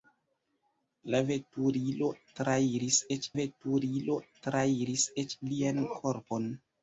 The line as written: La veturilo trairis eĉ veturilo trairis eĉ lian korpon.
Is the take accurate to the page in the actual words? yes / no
yes